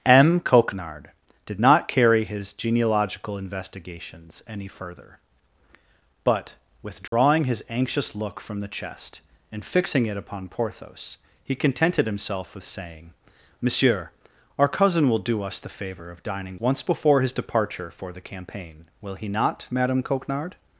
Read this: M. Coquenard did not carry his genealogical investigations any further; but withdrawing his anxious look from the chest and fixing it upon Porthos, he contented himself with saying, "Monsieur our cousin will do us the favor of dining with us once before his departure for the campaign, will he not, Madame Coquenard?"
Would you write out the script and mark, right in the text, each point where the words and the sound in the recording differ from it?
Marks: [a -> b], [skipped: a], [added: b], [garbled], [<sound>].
M. Coquenard did not carry his genealogical investigations any further; but withdrawing [dropout] his anxious look from the chest and fixing it upon Porthos, he contented himself with saying, "Monsieur our cousin will do us the favor of dining [skipped: with us] once before his departure for the campaign, will he not, Madame Coquenard?"